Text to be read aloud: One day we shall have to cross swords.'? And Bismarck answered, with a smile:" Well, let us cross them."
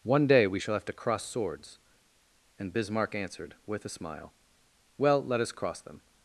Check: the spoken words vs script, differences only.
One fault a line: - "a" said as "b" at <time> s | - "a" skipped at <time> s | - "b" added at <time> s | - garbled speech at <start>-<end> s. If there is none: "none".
none